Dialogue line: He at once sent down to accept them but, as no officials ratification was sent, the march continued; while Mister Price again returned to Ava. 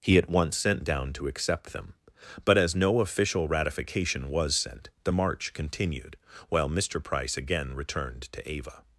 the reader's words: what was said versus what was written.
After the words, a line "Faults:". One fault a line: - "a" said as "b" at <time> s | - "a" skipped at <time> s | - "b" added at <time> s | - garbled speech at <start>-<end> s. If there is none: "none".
He at once sent down to accept them but, as no official ratification was sent, the march continued; while Mister Price again returned to Ava.
Faults:
- "officials" said as "official" at 3.0 s